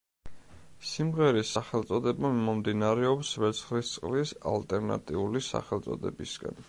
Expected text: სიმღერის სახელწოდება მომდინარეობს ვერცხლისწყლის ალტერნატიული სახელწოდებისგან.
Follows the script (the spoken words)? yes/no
yes